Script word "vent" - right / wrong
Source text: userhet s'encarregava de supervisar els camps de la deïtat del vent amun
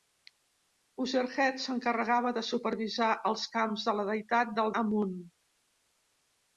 wrong